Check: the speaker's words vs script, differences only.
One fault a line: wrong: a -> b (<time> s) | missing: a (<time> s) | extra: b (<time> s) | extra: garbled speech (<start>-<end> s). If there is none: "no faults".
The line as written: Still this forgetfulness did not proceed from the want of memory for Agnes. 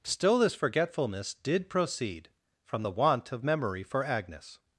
missing: not (1.7 s)